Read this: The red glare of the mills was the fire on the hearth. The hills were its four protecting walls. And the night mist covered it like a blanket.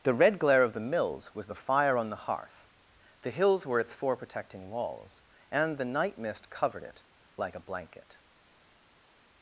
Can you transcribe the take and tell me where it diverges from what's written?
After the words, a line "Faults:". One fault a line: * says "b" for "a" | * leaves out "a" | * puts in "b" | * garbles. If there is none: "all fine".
The red glare of the mills was the fire on the hearth. The hills were its four protecting walls. And the night mist covered it like a blanket.
Faults:
all fine